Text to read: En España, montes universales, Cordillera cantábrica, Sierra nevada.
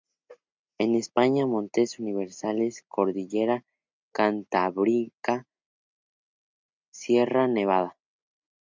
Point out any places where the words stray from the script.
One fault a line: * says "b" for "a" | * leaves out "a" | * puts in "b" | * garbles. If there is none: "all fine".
all fine